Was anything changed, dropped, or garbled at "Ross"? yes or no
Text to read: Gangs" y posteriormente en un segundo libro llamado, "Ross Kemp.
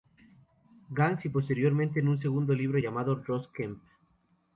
no